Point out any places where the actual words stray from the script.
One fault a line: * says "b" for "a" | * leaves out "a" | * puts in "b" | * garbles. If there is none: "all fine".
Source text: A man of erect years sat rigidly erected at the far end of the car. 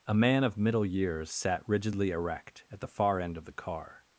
* says "middle" for "erect"
* says "erect" for "erected"